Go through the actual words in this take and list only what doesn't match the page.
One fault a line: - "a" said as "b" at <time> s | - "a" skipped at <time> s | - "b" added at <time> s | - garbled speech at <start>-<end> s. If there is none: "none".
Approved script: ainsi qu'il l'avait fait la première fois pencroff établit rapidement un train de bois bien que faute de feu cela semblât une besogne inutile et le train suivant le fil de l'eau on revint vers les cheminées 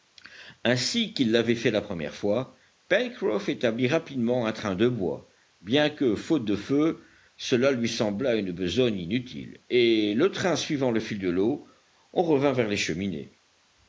- "lui" added at 7.7 s